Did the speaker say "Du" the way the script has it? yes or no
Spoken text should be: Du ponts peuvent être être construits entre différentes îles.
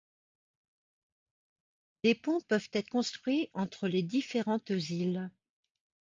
no